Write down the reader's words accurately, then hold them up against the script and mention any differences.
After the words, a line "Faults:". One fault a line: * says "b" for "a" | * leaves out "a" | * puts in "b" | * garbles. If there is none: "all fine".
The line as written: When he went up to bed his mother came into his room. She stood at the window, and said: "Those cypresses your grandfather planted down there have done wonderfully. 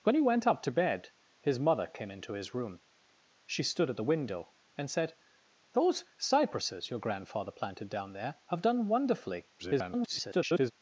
When he went up to bed his mother came into his room. She stood at the window, and said: "Those cypresses your grandfather planted down there have done wonderfully. [garbled]
Faults:
* garbles